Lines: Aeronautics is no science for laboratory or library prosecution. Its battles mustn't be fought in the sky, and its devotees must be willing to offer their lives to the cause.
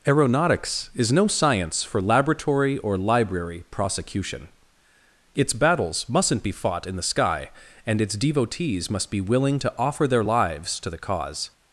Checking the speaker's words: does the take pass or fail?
pass